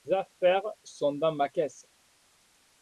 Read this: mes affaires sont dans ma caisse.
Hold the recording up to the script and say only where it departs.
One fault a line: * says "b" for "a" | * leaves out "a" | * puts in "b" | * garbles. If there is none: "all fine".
all fine